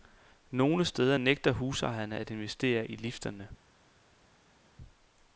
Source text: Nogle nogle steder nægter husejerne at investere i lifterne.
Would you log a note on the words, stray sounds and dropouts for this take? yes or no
yes